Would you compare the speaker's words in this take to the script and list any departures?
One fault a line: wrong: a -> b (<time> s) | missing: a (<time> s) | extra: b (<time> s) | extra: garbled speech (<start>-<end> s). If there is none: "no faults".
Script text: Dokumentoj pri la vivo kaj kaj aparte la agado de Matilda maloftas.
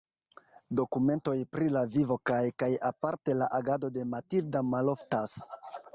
no faults